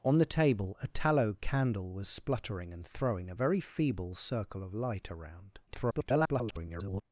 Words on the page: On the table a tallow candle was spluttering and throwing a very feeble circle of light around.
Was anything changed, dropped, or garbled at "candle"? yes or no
no